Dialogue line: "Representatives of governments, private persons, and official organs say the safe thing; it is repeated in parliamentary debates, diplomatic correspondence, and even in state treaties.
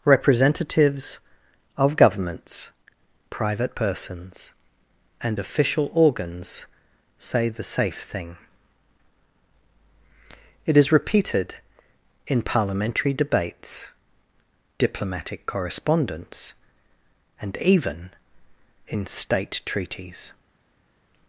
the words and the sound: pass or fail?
pass